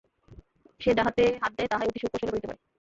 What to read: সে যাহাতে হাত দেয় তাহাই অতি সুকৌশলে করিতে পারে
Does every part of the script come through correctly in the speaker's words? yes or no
yes